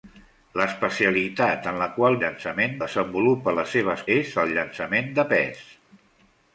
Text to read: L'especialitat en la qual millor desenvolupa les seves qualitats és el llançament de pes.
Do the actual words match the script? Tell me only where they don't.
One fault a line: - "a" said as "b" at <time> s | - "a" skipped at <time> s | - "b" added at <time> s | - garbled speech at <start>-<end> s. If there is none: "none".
- "millor" said as "llançament" at 2.2 s
- "qualitats" skipped at 4.1 s